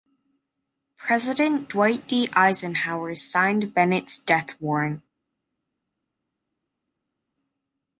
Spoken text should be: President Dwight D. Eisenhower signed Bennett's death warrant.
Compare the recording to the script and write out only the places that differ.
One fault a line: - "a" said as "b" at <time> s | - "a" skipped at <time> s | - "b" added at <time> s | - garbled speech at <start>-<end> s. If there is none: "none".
none